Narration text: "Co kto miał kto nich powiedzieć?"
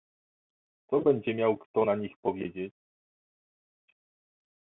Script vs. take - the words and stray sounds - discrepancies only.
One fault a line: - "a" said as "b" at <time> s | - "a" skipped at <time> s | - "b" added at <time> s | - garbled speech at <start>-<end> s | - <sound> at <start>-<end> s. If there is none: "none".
- "kto" said as "będzie" at 1.0 s
- "na" added at 1.8 s